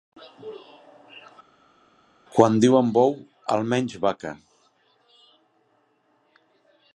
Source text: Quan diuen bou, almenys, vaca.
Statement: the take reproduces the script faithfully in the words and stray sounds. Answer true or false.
true